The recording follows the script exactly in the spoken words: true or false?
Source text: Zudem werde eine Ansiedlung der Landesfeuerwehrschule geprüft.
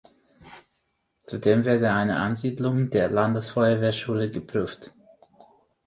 true